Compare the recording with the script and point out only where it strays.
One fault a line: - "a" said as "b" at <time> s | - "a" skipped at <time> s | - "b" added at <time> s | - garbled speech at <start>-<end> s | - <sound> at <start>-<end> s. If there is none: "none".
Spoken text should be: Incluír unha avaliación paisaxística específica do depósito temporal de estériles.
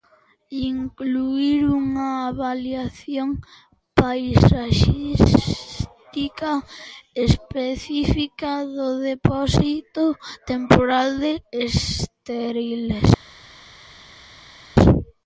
none